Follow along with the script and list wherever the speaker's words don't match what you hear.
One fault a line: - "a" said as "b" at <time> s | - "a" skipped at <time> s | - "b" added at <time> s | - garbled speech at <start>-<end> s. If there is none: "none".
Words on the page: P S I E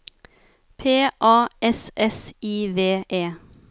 - "A" added at 1.2 s
- "S" added at 1.9 s
- "V" added at 2.7 s